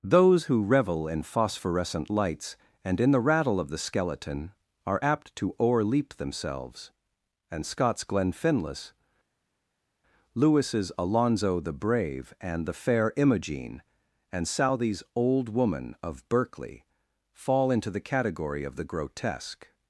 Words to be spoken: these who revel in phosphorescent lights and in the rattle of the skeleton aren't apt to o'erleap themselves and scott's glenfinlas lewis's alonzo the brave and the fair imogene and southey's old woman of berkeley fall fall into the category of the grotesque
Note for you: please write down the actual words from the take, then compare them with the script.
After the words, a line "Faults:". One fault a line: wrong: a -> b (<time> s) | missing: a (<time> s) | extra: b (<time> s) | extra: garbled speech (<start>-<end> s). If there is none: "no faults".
those who revel in phosphorescent lights and in the rattle of the skeleton are apt to o'erleap themselves and scott's glenfinlas lewis's alonzo the brave and the fair imogene and southey's old woman of berkeley fall into the category of the grotesque
Faults:
wrong: these -> those (0.0 s)
wrong: aren't -> are (4.9 s)
missing: fall (17.7 s)